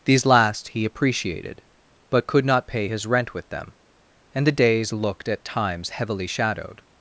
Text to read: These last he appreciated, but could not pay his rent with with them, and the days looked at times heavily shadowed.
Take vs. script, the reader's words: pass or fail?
fail